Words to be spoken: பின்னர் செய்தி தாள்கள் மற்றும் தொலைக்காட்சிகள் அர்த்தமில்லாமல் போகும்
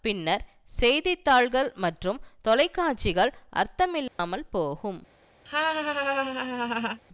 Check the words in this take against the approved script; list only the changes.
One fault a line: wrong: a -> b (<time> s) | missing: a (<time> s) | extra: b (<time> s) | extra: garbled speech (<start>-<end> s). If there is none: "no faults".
no faults